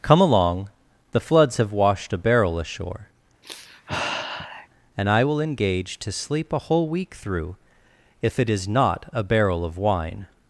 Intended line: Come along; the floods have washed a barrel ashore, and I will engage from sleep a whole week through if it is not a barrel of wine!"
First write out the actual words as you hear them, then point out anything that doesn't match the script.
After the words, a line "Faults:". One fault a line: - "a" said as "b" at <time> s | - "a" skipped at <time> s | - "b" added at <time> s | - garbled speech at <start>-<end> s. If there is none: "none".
Come along; the floods have washed a barrel ashore, and I will engage to sleep a whole week through if it is not a barrel of wine!"
Faults:
- "from" said as "to" at 6.0 s